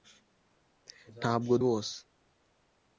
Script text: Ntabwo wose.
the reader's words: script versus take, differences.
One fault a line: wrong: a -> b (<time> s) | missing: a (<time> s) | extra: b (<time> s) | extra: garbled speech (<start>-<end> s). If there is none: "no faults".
no faults